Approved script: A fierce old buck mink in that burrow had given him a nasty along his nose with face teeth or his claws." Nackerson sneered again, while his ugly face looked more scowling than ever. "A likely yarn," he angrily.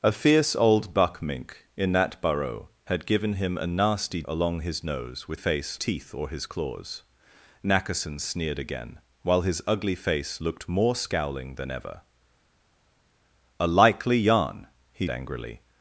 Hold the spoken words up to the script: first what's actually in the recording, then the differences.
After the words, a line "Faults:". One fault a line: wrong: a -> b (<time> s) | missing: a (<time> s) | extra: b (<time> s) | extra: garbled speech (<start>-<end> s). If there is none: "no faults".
A fierce old buck mink in that burrow had given him a nasty along his nose with face teeth or his claws." Nackerson sneered again, while his ugly face looked more scowling than ever. "A likely yarn," he angrily.
Faults:
no faults